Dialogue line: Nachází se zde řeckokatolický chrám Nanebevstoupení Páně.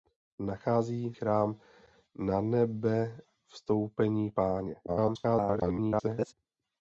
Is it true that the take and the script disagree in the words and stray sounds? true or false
true